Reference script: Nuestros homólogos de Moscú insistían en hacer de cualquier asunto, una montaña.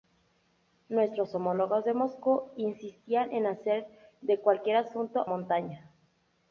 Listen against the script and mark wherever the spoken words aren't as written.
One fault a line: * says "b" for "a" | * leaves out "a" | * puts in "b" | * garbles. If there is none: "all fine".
* leaves out "una"